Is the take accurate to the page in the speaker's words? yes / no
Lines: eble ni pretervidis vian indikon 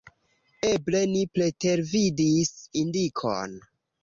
no